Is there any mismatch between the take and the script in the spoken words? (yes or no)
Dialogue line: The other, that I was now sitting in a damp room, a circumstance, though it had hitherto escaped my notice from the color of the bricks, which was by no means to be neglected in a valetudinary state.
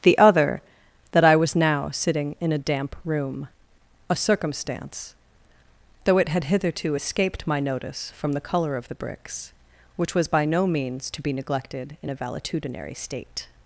no